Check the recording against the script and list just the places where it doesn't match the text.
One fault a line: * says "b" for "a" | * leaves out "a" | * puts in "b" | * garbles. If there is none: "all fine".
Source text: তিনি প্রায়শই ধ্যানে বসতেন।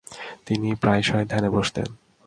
all fine